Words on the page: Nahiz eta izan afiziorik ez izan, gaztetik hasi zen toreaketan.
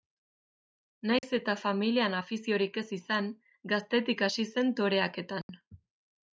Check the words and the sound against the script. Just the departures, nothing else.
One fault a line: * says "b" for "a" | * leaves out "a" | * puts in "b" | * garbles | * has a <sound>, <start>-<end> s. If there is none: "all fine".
* has a dropout, 1.2-1.2 s
* says "familian" for "izan"
* has a dropout, 5.4-5.5 s